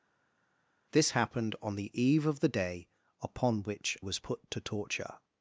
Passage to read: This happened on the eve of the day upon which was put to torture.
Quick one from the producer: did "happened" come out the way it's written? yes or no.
yes